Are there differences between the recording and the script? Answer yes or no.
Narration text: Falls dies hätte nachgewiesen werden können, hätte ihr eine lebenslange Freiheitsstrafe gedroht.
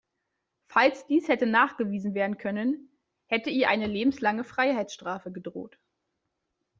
no